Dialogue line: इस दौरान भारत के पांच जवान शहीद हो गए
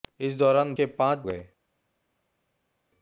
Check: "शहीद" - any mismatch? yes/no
yes